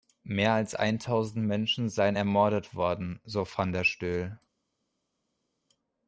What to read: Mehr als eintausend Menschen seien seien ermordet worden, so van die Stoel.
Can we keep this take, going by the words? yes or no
no